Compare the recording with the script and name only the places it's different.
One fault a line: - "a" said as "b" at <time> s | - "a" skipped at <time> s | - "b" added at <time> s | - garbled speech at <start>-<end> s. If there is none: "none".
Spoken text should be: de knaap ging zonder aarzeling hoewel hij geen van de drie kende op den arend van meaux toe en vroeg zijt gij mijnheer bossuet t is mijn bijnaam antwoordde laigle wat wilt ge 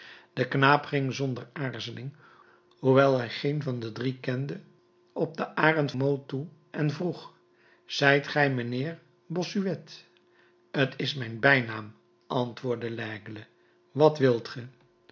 - "van" skipped at 5.9 s